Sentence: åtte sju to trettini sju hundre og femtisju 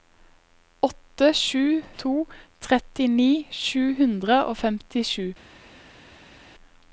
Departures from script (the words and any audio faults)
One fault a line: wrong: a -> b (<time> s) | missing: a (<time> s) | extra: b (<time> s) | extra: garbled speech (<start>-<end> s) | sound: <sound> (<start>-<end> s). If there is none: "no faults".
no faults